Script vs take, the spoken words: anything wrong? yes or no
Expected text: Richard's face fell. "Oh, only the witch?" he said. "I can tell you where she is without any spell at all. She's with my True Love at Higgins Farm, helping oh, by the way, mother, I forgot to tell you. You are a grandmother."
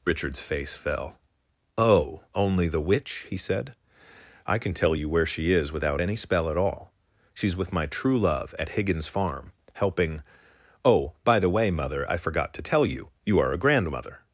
no